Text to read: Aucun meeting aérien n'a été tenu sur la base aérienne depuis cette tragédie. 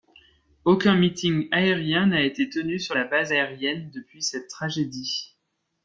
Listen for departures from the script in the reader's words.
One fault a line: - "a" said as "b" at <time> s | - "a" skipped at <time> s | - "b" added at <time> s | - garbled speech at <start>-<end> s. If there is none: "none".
none